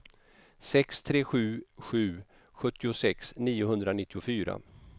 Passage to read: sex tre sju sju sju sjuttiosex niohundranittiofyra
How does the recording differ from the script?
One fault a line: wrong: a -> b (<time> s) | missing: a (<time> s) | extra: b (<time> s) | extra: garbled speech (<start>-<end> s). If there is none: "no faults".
missing: sju (2.2 s)